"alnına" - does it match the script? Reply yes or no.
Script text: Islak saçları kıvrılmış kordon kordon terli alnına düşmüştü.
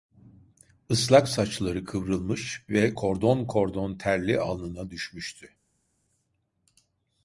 yes